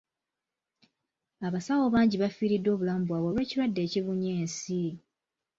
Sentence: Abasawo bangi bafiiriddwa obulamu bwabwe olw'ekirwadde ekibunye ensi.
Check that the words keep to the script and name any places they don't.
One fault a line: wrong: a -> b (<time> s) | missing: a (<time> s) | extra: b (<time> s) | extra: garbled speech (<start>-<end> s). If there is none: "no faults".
no faults